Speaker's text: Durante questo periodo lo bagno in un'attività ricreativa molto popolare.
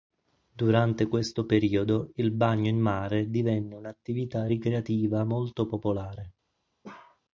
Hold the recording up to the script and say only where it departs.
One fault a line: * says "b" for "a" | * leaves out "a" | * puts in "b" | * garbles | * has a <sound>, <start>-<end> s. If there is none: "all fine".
* says "il" for "lo"
* puts in "mare divenne"
* has a bark, 6.8-7.2 s